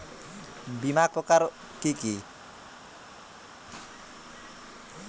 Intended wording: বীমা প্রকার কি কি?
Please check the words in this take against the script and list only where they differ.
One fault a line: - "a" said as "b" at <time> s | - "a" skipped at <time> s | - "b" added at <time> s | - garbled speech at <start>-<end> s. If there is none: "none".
none